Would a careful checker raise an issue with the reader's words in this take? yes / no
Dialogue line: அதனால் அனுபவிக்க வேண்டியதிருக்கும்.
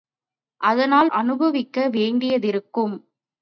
no